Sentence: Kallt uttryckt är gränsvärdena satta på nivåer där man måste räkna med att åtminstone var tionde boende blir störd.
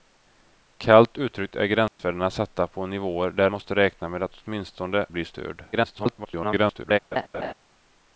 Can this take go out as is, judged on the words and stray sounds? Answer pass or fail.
fail